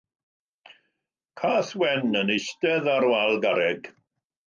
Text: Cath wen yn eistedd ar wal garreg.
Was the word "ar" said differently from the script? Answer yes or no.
no